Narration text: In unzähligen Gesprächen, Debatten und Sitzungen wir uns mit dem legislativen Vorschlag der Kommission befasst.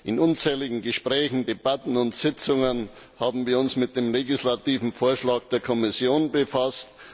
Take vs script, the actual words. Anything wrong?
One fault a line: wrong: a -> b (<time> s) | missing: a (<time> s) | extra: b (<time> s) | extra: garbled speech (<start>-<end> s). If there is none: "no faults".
extra: haben (3.2 s)